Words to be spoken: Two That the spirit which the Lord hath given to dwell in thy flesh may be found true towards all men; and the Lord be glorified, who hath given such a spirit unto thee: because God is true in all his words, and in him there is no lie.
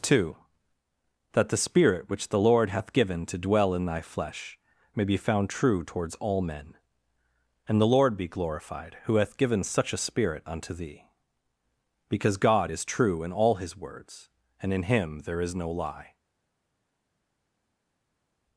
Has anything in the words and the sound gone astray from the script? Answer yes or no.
no